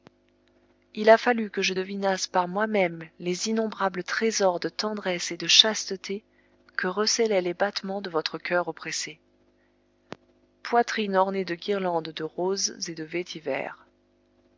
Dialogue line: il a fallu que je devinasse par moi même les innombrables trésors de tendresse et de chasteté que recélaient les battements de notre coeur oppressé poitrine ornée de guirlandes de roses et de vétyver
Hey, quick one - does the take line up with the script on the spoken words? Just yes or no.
no